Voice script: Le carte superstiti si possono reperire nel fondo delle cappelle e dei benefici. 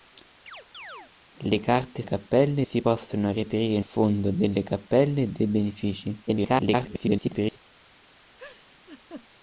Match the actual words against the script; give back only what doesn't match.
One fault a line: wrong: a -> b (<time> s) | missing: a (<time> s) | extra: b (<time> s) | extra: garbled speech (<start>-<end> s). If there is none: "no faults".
wrong: superstiti -> cappelle (2.0 s)
missing: nel (3.8 s)
extra: garbled speech (6.3-7.6 s)